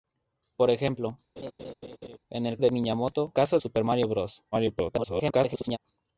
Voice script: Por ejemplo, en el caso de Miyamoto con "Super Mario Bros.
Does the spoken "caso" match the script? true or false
false